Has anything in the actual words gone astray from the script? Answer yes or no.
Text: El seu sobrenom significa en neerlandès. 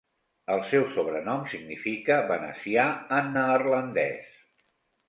yes